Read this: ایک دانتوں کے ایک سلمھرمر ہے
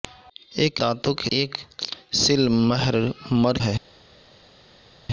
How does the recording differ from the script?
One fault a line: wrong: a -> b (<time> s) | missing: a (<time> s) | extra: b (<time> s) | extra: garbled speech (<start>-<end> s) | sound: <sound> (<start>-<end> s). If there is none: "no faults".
no faults